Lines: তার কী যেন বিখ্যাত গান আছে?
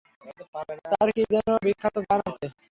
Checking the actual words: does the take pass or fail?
pass